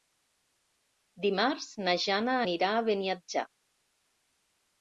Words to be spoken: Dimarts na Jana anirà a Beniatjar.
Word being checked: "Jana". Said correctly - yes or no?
yes